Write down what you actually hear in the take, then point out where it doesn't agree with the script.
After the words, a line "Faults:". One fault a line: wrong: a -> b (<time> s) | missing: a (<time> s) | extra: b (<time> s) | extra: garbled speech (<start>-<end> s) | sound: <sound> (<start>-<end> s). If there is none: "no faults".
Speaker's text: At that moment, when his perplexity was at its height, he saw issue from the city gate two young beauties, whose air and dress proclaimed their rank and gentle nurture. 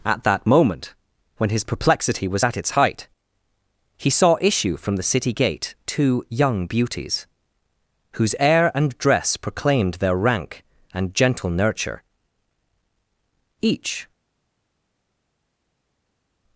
At that moment, when his perplexity was at its height, he saw issue from the city gate two young beauties, whose air and dress proclaimed their rank and gentle nurture. Each
Faults:
extra: Each (13.6 s)